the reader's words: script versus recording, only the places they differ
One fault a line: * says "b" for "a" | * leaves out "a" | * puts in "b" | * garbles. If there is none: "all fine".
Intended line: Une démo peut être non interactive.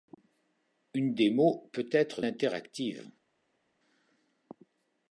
* leaves out "non"